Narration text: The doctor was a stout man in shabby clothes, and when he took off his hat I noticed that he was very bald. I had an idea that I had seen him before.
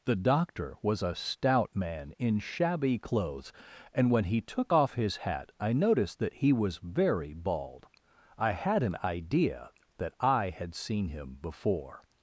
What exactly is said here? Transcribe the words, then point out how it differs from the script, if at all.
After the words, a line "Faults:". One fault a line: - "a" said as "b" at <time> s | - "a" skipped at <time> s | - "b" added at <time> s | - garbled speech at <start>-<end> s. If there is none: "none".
The doctor was a stout man in shabby clothes, and when he took off his hat I noticed that he was very bald. I had an idea that I had seen him before.
Faults:
none